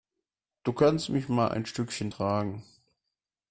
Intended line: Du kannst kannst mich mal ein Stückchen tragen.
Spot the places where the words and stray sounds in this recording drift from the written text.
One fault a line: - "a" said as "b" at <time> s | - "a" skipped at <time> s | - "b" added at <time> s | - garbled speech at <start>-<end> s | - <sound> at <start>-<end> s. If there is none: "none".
- "kannst" skipped at 1.1 s